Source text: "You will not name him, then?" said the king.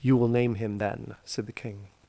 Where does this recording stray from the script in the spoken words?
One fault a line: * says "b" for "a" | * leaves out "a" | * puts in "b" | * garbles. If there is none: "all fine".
* leaves out "not"